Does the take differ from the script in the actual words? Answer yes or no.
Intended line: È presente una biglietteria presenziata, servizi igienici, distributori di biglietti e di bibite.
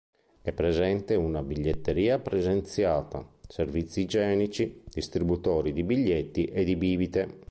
no